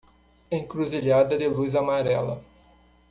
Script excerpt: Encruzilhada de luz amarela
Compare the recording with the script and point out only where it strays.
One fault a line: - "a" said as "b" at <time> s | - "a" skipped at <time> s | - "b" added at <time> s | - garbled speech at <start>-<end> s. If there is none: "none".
none